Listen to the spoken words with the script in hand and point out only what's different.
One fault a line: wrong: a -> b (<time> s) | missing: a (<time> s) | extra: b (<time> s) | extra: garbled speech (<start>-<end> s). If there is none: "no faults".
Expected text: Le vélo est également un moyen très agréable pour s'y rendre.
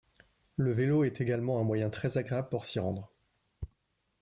no faults